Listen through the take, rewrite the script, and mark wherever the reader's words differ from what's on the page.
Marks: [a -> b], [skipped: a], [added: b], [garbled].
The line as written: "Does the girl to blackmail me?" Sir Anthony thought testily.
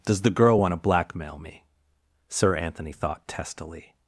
"Does the girl [added: want] to blackmail me?" Sir Anthony thought testily.